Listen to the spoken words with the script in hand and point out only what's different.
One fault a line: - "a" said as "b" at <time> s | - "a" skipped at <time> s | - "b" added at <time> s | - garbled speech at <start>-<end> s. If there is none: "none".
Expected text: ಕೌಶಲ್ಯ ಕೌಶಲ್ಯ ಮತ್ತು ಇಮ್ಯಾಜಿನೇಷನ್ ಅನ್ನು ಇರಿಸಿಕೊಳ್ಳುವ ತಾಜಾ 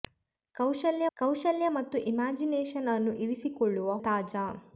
none